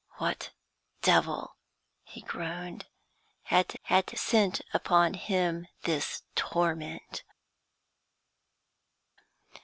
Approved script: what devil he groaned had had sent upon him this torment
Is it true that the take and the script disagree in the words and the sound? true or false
false